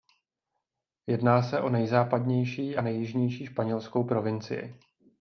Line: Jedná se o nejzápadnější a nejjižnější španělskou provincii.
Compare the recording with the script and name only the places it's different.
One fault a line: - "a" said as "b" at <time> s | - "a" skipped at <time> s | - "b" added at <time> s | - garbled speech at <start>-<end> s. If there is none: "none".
none